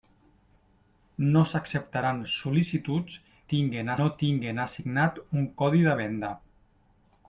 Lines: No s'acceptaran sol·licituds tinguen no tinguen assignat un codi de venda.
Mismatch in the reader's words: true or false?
false